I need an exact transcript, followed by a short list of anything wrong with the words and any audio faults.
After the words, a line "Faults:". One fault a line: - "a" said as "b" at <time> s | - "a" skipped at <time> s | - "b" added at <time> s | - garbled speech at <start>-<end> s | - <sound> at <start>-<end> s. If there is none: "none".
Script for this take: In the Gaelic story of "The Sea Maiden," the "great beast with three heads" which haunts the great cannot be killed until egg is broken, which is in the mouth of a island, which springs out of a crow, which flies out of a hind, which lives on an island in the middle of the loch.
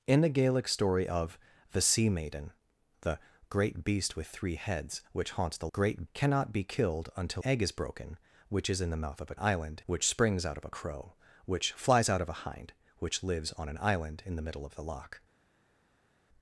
In the Gaelic story of "The Sea Maiden," the "great beast with three heads" which haunts the great cannot be killed until egg is broken, which is in the mouth of a island, which springs out of a crow, which flies out of a hind, which lives on an island in the middle of the loch.
Faults:
none